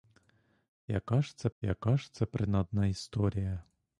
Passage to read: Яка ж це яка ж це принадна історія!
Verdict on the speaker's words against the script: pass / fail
pass